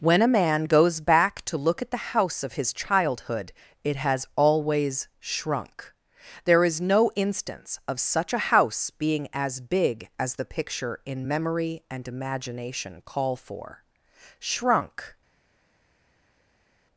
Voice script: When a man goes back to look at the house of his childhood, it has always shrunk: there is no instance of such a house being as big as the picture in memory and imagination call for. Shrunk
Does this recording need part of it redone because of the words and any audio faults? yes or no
no